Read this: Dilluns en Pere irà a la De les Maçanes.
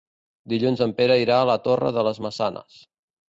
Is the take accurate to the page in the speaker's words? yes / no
no